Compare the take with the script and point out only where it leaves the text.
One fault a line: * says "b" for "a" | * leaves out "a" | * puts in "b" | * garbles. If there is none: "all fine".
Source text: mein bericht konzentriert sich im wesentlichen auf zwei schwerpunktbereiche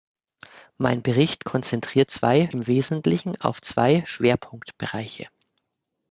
* says "zwei" for "sich"